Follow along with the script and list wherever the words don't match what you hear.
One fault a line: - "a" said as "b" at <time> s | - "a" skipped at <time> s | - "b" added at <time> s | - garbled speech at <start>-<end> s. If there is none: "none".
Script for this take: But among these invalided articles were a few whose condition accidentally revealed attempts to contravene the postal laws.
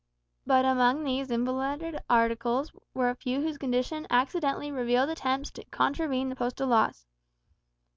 none